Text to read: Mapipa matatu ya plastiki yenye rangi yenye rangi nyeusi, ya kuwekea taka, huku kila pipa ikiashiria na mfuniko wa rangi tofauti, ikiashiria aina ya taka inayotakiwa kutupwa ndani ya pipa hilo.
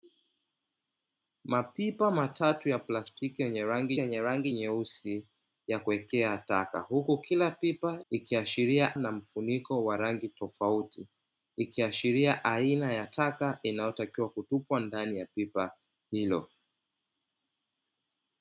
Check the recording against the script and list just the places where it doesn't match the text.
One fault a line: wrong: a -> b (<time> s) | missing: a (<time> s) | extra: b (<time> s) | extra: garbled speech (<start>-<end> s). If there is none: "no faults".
no faults